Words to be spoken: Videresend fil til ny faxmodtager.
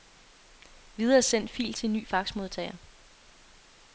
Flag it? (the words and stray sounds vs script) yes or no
no